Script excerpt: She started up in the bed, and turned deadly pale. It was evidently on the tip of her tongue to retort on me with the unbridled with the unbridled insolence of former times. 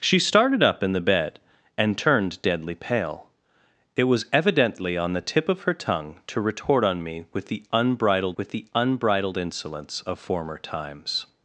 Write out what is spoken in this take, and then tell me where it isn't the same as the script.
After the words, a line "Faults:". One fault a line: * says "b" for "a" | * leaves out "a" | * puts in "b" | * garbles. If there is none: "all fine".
She started up in the bed, and turned deadly pale. It was evidently on the tip of her tongue to retort on me with the unbridled with the unbridled insolence of former times.
Faults:
all fine